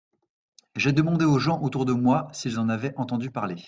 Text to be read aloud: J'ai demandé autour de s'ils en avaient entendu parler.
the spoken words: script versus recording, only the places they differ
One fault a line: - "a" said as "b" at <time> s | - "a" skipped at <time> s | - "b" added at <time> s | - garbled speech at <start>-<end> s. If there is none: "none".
- "aux gens" added at 1.2 s
- "moi" added at 1.9 s